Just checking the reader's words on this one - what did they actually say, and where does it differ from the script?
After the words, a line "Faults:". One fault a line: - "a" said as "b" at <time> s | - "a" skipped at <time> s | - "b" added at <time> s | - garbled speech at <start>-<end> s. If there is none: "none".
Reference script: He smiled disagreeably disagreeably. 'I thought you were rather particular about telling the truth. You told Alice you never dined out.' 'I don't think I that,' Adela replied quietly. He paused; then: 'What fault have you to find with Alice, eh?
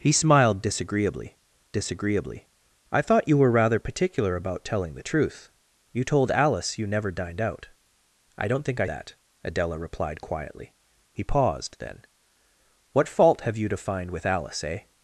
He smiled disagreeably disagreeably. 'I thought you were rather particular about telling the truth. You told Alice you never dined out.' 'I don't think I that,' Adela replied quietly. He paused; then: 'What fault have you to find with Alice, eh?
Faults:
none